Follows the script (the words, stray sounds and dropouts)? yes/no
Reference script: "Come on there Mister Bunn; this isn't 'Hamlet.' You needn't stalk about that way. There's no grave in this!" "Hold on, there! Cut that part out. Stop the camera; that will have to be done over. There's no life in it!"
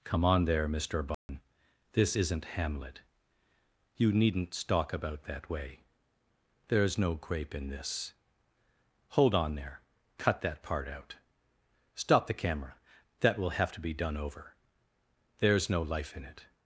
no